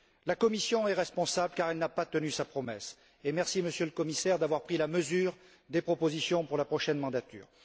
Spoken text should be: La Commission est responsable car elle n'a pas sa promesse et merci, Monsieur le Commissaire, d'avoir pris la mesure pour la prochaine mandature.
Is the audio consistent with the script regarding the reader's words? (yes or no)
no